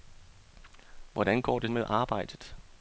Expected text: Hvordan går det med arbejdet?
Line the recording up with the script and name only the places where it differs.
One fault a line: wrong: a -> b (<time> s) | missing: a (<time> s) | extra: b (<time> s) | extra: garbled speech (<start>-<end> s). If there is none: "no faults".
no faults